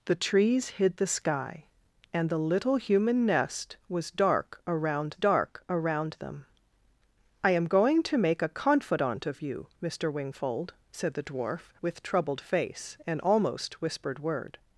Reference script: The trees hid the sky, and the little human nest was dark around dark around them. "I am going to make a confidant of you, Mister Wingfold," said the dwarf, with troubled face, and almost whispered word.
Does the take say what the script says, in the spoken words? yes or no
yes